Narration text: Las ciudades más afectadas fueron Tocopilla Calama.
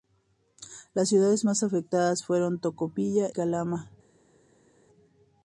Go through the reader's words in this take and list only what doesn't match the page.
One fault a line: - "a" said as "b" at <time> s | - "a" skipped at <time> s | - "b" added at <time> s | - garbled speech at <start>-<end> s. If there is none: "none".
none